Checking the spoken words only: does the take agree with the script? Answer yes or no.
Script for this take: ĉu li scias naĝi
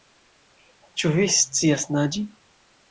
no